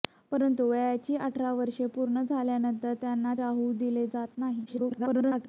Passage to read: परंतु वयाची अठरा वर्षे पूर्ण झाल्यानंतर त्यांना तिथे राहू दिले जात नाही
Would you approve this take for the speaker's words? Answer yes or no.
no